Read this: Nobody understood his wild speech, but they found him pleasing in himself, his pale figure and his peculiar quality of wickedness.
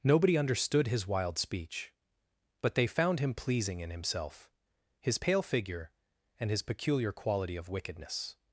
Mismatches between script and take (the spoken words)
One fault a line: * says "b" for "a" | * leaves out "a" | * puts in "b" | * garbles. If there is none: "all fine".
all fine